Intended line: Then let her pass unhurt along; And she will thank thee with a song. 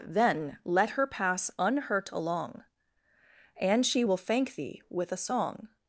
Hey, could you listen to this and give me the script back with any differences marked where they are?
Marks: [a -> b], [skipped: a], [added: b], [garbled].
Then let her pass unhurt along; And she will thank thee with a song.